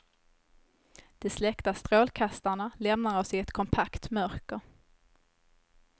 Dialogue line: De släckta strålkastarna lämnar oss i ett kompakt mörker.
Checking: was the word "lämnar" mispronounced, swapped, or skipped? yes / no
no